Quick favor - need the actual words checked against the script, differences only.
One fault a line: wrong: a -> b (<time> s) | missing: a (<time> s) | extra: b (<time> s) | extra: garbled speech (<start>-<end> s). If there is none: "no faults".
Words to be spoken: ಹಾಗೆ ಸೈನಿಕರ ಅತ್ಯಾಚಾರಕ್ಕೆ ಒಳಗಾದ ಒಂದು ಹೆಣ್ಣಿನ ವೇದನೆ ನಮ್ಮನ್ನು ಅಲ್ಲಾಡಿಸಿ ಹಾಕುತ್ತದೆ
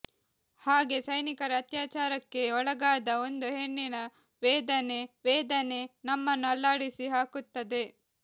extra: ವೇದನೆ (5.2 s)